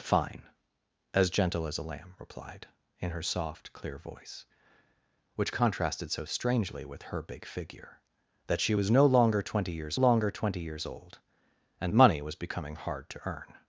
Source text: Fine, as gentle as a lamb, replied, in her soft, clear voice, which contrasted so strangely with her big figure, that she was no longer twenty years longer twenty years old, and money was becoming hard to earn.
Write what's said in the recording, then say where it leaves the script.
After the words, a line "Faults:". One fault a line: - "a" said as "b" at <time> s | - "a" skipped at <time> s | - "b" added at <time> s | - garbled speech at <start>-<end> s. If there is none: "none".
Fine, as gentle as a lamb, replied, in her soft, clear voice, which contrasted so strangely with her big figure, that she was no longer twenty years longer twenty years old, and money was becoming hard to earn.
Faults:
none